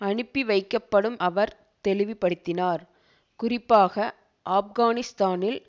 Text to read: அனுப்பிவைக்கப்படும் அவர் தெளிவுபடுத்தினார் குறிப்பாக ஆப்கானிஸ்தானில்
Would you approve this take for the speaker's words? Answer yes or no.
yes